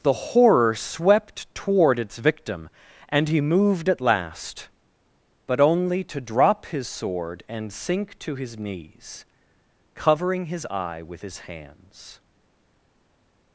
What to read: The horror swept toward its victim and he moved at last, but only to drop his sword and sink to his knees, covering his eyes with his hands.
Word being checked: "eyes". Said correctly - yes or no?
no